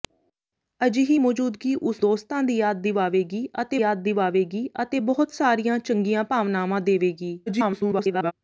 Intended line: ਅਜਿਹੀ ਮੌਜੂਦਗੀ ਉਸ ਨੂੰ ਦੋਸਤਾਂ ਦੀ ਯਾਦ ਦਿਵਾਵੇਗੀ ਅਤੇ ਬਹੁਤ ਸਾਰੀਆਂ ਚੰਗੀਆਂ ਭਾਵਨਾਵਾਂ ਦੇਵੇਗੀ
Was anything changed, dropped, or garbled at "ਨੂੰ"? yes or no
yes